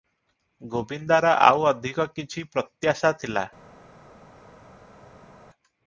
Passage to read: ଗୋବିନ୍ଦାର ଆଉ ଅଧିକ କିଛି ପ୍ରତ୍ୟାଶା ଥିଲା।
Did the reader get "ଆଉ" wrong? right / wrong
right